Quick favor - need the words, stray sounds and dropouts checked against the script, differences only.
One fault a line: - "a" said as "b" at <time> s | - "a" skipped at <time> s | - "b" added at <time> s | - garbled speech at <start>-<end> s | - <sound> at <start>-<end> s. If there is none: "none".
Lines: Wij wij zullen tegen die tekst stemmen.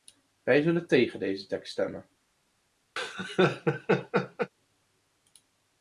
- "wij" skipped at 0.6 s
- "die" said as "deze" at 1.2 s
- laugh at 3.0-4.5 s